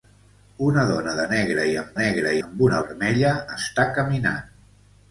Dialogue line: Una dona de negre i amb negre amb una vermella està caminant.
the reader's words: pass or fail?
pass